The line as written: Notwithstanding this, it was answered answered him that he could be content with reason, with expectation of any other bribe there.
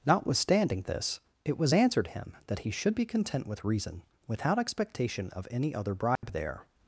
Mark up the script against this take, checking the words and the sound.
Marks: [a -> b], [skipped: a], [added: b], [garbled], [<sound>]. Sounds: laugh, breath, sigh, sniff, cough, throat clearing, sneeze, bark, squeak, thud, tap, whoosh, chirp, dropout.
Notwithstanding this, it was answered [skipped: answered] him that he [could -> should] be content with reason, [with -> without] expectation of any other bribe [dropout] there.